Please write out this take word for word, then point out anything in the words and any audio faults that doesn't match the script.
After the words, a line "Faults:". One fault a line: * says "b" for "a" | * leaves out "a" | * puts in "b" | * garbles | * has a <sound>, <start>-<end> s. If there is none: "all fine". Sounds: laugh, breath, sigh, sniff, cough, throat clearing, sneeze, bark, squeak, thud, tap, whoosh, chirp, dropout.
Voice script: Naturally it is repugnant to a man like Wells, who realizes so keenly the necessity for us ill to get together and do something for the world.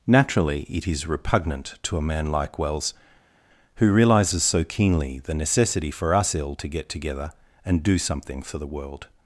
Naturally it is repugnant to a man like Wells, who realizes so keenly the necessity for us ill to get together and do something for the world.
Faults:
all fine